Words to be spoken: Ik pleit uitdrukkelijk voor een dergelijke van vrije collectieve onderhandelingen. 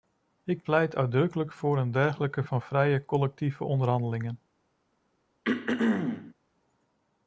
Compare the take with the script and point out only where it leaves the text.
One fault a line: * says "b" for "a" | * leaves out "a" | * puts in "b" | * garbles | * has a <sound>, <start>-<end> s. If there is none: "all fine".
* has a throat clearing, 5.4-6.3 s